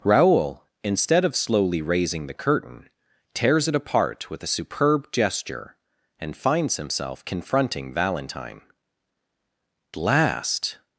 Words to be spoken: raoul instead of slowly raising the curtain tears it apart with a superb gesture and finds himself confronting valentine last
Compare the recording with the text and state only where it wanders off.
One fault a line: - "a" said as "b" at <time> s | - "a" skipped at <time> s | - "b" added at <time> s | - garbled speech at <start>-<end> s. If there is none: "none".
none